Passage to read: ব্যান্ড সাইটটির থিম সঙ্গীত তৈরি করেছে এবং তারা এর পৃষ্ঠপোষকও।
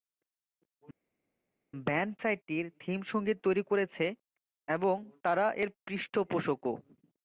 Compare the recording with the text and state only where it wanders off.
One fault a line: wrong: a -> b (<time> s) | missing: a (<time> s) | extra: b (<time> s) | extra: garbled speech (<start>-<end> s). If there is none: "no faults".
no faults